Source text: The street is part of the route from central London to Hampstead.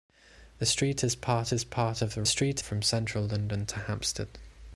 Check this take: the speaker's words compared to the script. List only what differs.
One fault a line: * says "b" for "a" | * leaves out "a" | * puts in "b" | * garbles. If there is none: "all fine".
* puts in "is part"
* says "street" for "route"